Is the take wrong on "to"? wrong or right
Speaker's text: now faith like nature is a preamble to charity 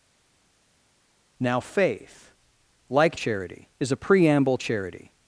wrong